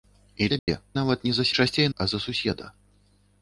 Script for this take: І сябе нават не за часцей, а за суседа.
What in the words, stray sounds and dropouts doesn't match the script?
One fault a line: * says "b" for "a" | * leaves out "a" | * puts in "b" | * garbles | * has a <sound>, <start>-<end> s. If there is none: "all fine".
* has a dropout, 0.6-0.7 s